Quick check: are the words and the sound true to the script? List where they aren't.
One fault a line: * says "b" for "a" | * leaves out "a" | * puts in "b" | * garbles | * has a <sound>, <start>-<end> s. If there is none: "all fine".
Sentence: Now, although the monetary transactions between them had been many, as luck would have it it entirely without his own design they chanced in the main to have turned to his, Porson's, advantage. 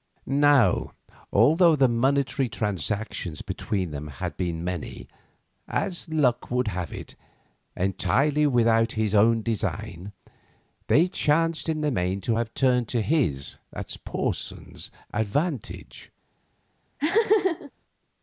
* leaves out "it"
* has a laugh, 17.0-17.7 s